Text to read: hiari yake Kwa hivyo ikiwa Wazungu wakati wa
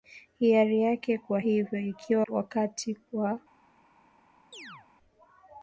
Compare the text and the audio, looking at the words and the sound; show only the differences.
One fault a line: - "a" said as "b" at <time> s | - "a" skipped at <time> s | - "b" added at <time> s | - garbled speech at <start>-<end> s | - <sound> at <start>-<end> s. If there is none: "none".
- "Wazungu" skipped at 2.3 s
- chirp at 4.5-4.9 s